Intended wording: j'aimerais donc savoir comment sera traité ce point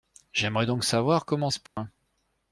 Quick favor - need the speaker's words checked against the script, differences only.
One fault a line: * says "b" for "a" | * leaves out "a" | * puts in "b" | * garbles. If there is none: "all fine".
* leaves out "sera traité"